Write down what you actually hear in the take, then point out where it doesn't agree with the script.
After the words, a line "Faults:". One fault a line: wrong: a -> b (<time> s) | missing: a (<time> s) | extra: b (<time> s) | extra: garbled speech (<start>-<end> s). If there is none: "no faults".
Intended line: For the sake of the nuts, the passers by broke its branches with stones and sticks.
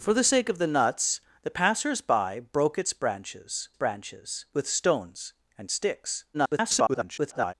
For the sake of the nuts, the passers by broke its branches branches with stones and sticks. [garbled]
Faults:
extra: branches (3.7 s)
extra: garbled speech (6.3-7.5 s)